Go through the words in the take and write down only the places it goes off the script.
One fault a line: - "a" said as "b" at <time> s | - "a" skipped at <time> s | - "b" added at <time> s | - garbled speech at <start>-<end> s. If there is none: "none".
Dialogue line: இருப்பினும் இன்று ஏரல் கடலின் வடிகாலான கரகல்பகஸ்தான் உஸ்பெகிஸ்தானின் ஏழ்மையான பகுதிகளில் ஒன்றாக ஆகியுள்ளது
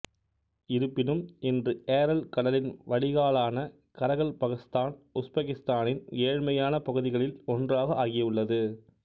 none